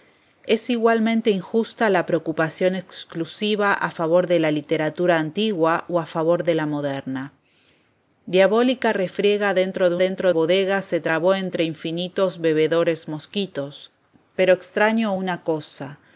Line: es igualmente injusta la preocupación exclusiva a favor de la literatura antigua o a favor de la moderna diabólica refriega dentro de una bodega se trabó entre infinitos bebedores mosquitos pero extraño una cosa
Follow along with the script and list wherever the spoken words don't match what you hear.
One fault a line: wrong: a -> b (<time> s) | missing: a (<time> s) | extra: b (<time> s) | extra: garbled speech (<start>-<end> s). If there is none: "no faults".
wrong: una -> dentro (10.0 s)